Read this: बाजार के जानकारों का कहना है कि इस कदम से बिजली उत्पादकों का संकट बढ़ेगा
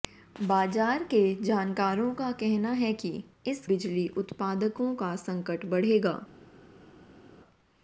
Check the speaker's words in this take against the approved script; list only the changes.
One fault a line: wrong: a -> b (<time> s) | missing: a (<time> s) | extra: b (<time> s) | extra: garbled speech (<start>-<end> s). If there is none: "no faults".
missing: कदम से (3.7 s)